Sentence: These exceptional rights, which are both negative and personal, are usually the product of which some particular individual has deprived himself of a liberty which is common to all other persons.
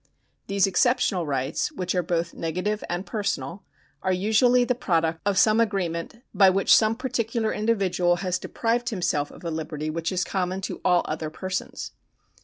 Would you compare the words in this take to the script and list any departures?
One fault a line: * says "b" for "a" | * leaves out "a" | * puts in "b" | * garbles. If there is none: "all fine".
* puts in "some agreement by"